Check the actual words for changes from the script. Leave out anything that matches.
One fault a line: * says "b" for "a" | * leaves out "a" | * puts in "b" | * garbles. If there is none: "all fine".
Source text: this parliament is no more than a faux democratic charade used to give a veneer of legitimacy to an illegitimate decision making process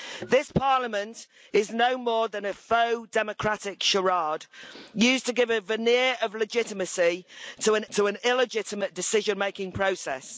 * puts in "to an"